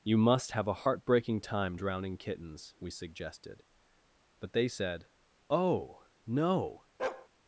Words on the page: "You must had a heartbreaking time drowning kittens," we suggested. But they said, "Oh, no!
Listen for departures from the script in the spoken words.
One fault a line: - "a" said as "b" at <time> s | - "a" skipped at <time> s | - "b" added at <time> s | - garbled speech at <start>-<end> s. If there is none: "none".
- "had" said as "have" at 0.5 s